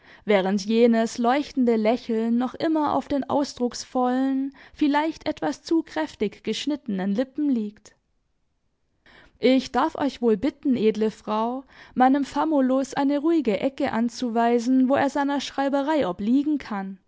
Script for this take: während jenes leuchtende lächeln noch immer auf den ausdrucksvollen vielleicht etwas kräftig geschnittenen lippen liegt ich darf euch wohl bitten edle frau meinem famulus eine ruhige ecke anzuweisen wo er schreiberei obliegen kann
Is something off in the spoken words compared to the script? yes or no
yes